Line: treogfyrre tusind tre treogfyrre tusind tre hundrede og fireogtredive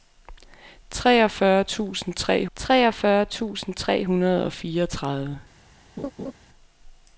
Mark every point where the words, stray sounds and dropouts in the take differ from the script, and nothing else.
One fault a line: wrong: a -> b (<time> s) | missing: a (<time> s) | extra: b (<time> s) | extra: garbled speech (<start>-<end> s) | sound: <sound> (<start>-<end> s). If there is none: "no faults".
sound: laugh (6.0-6.3 s)